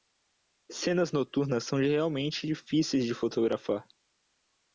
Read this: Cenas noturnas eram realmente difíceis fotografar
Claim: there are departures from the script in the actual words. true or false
true